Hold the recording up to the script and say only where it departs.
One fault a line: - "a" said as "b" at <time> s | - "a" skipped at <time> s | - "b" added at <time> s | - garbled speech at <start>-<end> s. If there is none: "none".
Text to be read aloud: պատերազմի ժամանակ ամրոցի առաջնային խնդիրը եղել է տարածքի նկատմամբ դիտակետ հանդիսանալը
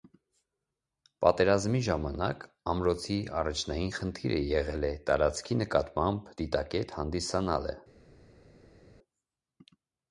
none